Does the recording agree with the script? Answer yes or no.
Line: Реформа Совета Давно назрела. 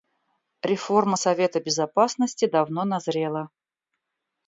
no